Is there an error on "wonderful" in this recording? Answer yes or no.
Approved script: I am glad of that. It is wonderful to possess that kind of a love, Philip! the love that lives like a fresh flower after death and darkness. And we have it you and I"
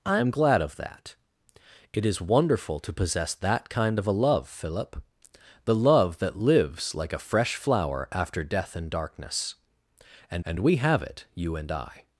no